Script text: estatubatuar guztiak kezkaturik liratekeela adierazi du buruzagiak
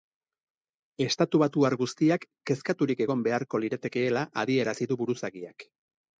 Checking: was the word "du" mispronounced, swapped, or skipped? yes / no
no